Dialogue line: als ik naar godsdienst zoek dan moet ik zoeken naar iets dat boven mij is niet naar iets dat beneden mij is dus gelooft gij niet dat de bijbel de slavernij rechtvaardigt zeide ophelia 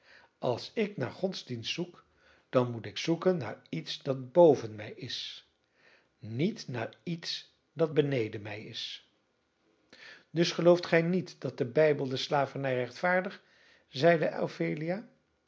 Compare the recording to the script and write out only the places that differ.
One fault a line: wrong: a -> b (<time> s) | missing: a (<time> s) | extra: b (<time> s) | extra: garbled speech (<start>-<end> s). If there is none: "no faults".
no faults